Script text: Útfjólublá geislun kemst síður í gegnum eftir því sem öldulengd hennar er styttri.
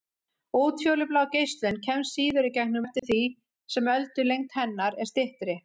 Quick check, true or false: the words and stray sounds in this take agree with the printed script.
false